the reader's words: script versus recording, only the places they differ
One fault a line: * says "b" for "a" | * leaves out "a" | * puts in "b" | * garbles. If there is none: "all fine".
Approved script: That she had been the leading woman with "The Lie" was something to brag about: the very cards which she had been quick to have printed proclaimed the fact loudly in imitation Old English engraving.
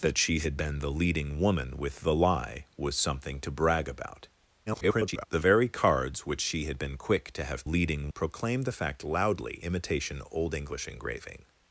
* garbles
* says "leading" for "printed"
* leaves out "in"